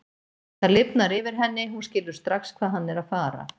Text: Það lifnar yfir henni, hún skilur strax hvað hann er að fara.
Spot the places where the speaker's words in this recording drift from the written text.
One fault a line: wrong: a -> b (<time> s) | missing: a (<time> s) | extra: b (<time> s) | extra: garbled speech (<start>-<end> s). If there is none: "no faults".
no faults